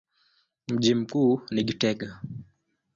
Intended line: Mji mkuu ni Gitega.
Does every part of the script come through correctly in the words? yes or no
yes